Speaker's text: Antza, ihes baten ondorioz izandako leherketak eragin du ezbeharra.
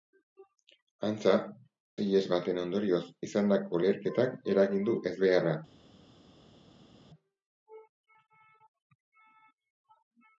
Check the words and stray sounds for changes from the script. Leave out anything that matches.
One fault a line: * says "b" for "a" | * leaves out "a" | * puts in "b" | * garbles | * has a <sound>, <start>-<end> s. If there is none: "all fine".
all fine